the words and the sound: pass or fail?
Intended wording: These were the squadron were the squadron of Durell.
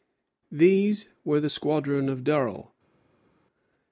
fail